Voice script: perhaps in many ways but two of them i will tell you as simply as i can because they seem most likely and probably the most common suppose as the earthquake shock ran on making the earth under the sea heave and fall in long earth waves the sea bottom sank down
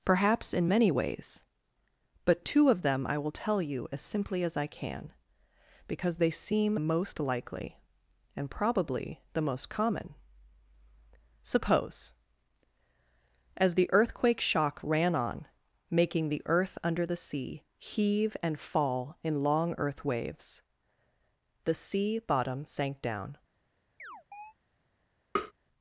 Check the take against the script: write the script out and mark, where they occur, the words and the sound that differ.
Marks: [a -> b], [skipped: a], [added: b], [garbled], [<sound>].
perhaps in many ways but two of them i will tell you as simply as i can because they seem most likely and probably the most common suppose as the earthquake shock ran on making the earth under the sea heave and fall in long earth waves the sea bottom sank down [chirp] [tap]